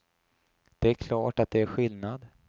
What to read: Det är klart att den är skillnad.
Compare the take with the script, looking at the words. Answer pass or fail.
fail